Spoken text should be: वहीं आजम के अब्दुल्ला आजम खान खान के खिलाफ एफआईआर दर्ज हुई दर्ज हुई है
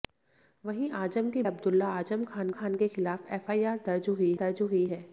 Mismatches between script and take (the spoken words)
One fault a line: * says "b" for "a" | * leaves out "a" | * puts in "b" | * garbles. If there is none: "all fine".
all fine